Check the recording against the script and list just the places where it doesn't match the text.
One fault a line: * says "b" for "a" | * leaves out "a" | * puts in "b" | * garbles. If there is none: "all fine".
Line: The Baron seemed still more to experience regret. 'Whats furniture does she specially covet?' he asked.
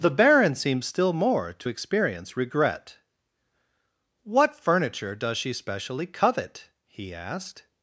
* says "What" for "Whats"